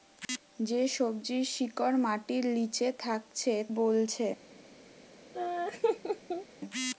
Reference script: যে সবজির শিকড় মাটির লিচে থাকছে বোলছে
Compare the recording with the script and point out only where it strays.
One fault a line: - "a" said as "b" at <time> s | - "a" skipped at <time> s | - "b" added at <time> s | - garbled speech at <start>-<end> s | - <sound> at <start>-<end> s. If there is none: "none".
- laugh at 5.3-6.5 s